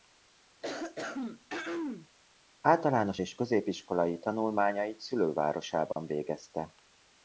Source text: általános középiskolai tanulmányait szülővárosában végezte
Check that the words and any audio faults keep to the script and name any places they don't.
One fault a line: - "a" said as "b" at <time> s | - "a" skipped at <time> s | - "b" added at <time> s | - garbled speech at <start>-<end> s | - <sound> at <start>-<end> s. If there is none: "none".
- throat clearing at 0.6-2.1 s
- "és" added at 3.2 s
- dropout at 5.9-6.0 s